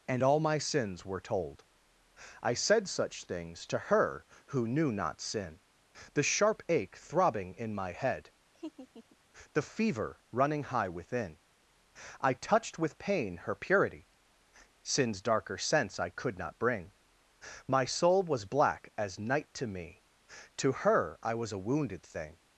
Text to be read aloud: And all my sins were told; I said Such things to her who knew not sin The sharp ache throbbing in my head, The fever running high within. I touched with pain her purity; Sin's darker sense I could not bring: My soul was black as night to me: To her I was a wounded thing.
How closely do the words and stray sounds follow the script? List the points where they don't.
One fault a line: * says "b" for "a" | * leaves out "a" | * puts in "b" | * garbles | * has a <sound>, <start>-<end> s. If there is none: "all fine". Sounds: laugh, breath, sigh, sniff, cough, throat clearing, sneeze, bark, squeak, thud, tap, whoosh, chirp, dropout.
* has a laugh, 8.5-9.2 s